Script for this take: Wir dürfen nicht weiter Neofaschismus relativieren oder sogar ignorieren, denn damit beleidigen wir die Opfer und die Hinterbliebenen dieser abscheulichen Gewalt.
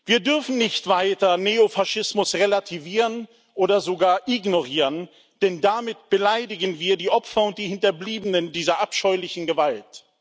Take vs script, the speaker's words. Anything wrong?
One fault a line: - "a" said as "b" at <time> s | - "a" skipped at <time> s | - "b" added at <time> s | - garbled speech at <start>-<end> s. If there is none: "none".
none